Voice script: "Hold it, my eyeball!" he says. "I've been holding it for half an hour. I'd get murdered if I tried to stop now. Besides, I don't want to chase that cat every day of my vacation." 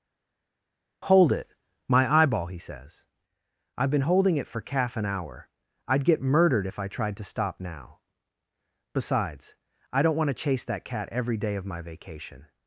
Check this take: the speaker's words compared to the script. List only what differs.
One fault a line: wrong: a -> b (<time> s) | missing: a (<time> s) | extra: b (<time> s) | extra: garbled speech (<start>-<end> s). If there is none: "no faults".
wrong: half -> calf (4.6 s)